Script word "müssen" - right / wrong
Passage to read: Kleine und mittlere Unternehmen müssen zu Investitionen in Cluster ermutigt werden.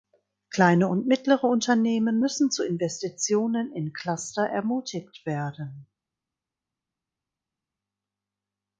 right